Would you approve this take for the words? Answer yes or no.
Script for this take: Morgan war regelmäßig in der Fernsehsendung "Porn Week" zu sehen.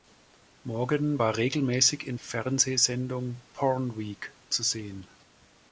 no